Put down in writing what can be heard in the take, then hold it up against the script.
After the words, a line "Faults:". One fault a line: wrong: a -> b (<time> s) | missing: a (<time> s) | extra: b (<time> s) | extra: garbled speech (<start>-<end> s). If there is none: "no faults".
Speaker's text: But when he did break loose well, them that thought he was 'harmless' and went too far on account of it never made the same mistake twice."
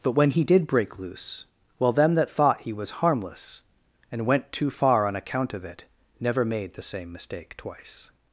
But when he did break loose well, them that thought he was 'harmless' and went too far on account of it never made the same mistake twice."
Faults:
no faults